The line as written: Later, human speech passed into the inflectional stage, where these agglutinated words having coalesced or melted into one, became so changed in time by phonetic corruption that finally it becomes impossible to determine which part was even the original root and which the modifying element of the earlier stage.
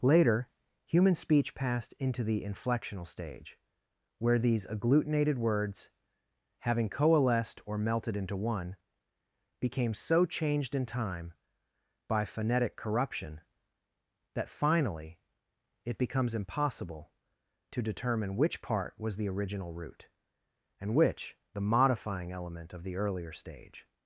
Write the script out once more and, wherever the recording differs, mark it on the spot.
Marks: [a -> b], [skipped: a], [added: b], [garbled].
Later, human speech passed into the inflectional stage, where these agglutinated words having coalesced or melted into one, became so changed in time by phonetic corruption that finally it becomes impossible to determine which part was [skipped: even] the original root and which the modifying element of the earlier stage.